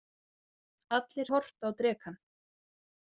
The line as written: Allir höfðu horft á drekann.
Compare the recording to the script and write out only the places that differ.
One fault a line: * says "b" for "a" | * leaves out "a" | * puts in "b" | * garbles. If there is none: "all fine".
* leaves out "höfðu"